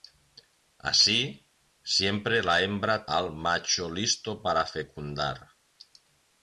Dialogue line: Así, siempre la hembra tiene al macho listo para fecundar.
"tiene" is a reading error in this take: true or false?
true